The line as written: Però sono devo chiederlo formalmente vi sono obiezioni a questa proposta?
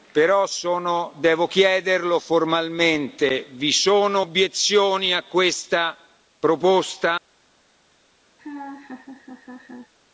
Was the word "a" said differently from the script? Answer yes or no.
no